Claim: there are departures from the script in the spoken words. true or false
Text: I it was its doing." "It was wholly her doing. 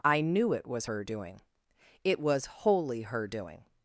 true